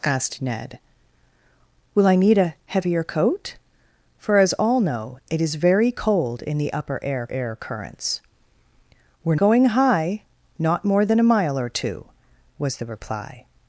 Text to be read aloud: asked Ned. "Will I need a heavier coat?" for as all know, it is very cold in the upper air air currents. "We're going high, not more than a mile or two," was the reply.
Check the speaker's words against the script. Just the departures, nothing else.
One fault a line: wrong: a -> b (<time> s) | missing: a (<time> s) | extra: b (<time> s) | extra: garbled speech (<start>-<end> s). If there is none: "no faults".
no faults